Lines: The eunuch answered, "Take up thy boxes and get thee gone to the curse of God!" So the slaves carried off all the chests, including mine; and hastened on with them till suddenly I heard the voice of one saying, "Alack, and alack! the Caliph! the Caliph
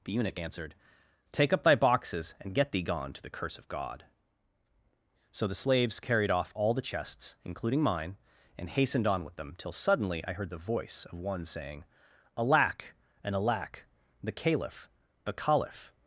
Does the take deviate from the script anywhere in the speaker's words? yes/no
no